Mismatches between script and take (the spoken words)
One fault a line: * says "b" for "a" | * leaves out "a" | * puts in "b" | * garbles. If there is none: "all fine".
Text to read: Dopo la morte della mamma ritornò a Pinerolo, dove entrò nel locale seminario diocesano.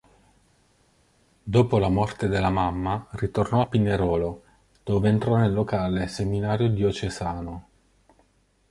all fine